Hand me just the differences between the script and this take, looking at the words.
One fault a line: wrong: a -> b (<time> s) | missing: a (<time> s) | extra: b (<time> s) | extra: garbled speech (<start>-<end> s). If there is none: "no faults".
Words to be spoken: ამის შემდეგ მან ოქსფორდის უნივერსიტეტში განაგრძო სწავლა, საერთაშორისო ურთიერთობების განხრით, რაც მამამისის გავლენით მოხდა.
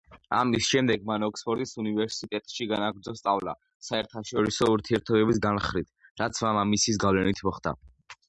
no faults